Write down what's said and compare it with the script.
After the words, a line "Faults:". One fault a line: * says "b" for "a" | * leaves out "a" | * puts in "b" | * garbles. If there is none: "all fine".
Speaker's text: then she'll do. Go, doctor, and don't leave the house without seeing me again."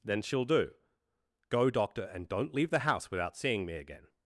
then she'll do. Go, doctor, and don't leave the house without seeing me again."
Faults:
all fine